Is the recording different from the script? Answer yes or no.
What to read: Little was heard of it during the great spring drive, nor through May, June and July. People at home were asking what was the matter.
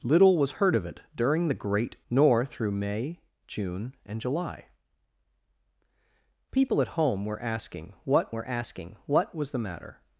yes